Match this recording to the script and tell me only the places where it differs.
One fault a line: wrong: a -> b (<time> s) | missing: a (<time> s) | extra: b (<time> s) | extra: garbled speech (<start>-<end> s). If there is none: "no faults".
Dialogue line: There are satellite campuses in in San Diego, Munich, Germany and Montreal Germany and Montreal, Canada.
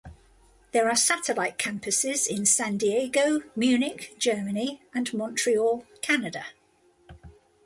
missing: in (2.5 s)
missing: Germany and Montreal (5.8 s)